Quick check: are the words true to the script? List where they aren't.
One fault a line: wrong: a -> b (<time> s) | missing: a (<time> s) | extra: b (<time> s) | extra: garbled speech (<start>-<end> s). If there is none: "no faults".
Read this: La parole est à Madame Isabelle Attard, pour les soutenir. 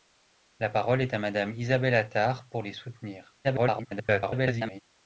extra: garbled speech (3.4-4.8 s)